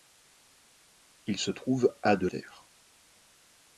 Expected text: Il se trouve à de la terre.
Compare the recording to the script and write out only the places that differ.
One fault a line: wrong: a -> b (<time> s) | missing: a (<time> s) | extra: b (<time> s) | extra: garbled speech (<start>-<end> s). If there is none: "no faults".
missing: la (2.3 s)